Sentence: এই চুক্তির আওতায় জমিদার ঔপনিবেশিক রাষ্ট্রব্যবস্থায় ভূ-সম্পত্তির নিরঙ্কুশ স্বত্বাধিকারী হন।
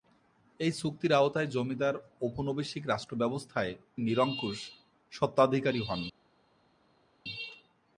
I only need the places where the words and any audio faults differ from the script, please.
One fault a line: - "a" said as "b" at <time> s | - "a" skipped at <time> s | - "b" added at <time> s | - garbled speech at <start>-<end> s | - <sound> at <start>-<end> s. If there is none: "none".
- "ভূ-সম্পত্তির" skipped at 3.7 s